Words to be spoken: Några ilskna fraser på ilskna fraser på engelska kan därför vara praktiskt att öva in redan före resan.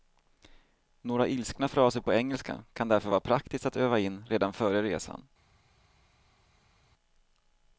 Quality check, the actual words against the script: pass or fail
fail